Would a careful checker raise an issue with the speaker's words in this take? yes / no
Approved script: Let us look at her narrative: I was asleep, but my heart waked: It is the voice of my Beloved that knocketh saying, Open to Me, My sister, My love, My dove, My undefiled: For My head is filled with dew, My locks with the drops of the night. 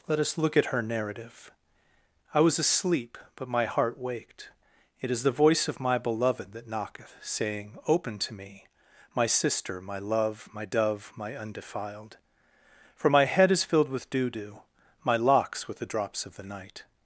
yes